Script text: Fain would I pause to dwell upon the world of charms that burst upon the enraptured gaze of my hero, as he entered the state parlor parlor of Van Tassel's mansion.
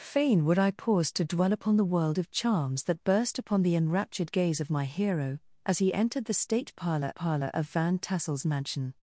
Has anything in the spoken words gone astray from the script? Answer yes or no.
no